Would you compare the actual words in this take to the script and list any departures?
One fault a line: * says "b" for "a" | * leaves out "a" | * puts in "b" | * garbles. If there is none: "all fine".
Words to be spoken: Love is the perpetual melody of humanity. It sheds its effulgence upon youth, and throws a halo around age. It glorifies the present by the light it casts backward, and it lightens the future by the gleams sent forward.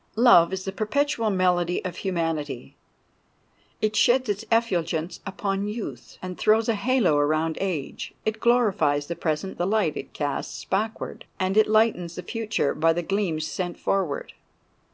* leaves out "by"